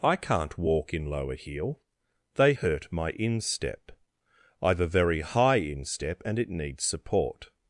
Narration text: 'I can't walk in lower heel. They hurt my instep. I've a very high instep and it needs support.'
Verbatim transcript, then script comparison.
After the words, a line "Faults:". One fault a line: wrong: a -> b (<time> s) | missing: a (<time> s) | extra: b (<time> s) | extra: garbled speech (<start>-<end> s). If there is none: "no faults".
'I can't walk in lower heel. They hurt my instep. I've a very high instep and it needs support.'
Faults:
no faults